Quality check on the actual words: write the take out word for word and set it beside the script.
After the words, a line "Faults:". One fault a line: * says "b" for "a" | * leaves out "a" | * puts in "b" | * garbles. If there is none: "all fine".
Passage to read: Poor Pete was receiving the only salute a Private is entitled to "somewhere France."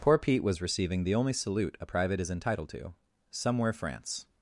Poor Pete was receiving the only salute a Private is entitled to "somewhere France."
Faults:
all fine